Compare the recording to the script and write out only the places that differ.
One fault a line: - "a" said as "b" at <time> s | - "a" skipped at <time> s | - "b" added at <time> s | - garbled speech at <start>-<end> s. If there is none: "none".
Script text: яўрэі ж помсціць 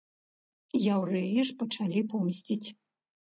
- "пачалі" added at 1.6 s